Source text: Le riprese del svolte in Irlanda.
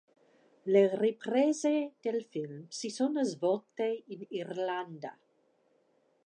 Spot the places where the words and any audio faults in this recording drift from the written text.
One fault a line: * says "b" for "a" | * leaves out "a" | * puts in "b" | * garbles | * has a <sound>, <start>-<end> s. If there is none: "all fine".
* puts in "film si sono"